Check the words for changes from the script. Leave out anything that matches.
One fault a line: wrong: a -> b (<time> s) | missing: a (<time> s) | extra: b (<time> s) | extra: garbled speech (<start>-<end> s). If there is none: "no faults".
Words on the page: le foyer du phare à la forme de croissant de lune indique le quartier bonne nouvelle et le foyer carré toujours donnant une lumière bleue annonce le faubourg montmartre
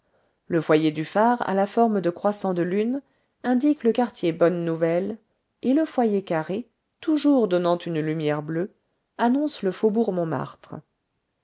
no faults